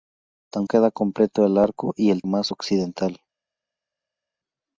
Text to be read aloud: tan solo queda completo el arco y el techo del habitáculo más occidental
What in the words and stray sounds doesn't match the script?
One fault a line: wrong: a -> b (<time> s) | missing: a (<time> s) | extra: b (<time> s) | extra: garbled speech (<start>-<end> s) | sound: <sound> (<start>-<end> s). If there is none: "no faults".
missing: solo (0.7 s)
missing: techo del habitáculo (2.2 s)